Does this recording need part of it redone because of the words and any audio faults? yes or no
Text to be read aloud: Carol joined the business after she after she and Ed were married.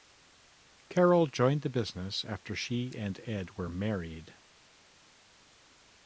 yes